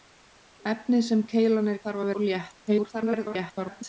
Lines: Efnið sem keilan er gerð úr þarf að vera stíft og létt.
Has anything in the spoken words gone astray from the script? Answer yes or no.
yes